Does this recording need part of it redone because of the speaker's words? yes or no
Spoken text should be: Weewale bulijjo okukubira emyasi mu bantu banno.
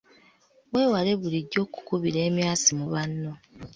yes